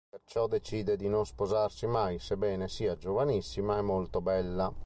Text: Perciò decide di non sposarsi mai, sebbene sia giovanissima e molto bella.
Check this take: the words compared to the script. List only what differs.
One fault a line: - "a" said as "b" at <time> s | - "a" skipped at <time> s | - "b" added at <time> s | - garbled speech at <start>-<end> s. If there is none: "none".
none